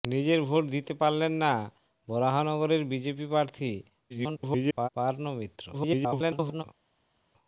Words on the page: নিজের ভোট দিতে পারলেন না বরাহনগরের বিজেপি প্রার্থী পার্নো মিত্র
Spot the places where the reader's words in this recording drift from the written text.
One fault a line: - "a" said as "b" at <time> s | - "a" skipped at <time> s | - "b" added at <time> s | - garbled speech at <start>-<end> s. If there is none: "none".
- garbled speech at 4.1-4.9 s
- garbled speech at 5.7-6.6 s